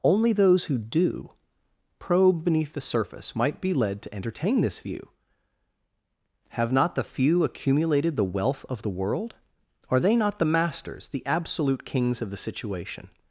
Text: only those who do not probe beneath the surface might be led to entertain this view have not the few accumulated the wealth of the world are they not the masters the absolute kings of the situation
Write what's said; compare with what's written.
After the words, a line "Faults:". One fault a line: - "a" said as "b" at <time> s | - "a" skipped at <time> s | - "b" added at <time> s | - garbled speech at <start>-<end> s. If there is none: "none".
only those who do probe beneath the surface might be led to entertain this view have not the few accumulated the wealth of the world are they not the masters the absolute kings of the situation
Faults:
- "not" skipped at 1.3 s